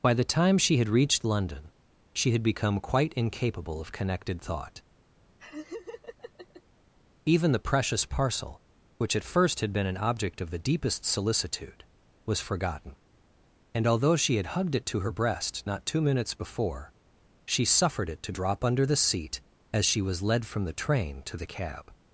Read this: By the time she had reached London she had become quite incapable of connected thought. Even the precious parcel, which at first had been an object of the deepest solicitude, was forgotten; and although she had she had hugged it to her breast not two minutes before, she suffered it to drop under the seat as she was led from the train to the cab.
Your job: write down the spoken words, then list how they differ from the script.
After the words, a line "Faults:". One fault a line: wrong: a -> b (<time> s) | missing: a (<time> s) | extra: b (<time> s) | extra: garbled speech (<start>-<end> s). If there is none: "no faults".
By the time she had reached London she had become quite incapable of connected thought. Even the precious parcel, which at first had been an object of the deepest solicitude, was forgotten; and although she had hugged it to her breast not two minutes before, she suffered it to drop under the seat as she was led from the train to the cab.
Faults:
missing: she had (14.6 s)